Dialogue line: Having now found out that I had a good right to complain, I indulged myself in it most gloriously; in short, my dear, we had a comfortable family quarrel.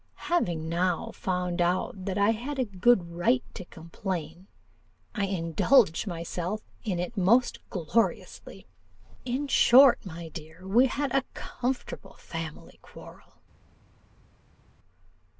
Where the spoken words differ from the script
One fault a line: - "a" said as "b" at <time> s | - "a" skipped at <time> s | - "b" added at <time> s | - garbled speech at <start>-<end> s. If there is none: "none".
none